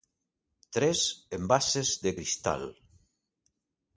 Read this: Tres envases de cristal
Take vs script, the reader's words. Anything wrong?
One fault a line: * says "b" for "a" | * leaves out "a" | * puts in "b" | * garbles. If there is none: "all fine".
all fine